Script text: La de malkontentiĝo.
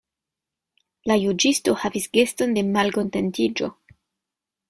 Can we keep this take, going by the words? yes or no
no